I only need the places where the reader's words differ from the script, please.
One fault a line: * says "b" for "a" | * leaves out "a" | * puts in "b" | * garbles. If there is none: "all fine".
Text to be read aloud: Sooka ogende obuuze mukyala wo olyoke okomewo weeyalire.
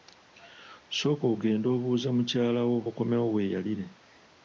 * leaves out "olyoke"